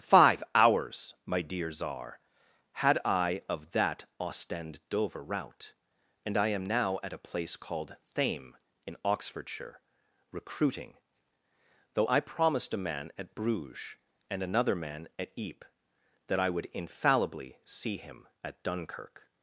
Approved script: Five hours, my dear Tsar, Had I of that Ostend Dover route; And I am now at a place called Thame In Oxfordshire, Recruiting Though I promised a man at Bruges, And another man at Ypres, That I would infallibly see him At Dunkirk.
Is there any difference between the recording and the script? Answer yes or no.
no